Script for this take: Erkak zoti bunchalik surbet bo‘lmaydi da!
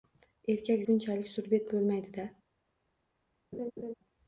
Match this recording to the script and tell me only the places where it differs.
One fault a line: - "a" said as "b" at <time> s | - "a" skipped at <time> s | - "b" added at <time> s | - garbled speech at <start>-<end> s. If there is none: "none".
- "zoti" skipped at 0.8 s